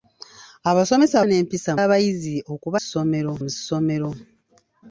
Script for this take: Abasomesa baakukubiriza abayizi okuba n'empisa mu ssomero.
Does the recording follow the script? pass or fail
fail